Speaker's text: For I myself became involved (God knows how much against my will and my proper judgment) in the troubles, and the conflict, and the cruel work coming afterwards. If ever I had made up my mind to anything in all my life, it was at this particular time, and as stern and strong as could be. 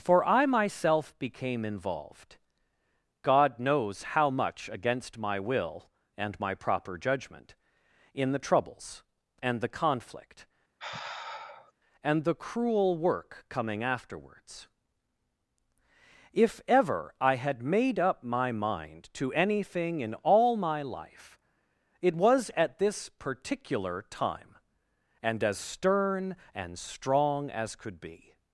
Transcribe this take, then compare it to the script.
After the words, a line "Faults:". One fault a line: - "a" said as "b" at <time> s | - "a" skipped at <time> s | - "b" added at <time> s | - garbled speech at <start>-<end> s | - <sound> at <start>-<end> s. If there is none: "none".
For I myself became involved (God knows how much against my will and my proper judgment) in the troubles, and the conflict, and the cruel work coming afterwards. If ever I had made up my mind to anything in all my life, it was at this particular time, and as stern and strong as could be.
Faults:
- sigh at 10.8-11.7 s